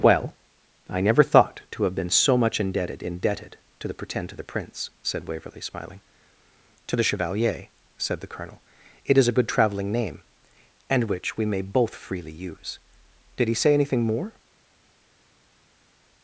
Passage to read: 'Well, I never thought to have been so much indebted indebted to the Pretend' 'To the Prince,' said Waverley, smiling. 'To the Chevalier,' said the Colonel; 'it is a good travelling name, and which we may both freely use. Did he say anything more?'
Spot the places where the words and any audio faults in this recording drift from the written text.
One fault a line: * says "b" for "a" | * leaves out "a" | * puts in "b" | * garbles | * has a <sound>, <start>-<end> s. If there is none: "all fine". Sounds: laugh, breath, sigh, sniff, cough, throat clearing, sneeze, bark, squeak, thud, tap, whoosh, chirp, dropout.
all fine